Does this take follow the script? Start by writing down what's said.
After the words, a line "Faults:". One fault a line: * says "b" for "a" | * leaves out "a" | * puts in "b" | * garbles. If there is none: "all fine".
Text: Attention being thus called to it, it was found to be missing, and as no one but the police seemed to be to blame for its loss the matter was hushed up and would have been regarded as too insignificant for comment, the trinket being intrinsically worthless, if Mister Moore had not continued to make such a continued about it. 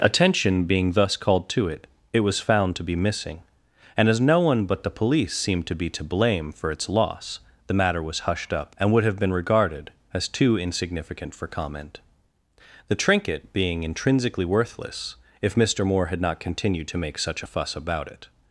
Attention being thus called to it, it was found to be missing, and as no one but the police seemed to be to blame for its loss the matter was hushed up and would have been regarded as too insignificant for comment, the trinket being intrinsically worthless, if Mister Moore had not continued to make such a fuss about it.
Faults:
* says "fuss" for "continued"